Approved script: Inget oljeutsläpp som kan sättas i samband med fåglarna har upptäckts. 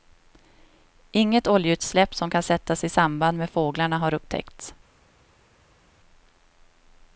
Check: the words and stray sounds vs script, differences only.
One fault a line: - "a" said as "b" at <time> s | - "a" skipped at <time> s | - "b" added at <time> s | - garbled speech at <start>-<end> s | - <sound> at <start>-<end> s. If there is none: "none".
none